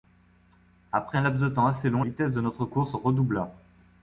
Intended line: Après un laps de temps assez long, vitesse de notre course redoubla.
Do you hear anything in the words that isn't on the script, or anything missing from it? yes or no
no